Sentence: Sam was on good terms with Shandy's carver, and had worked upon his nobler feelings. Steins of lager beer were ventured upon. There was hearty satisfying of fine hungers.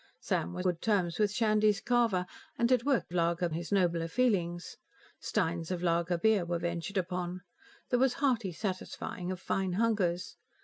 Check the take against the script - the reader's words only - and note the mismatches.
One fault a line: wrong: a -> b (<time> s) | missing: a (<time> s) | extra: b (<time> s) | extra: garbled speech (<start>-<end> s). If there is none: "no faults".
missing: on (0.7 s)
wrong: upon -> lager (3.1 s)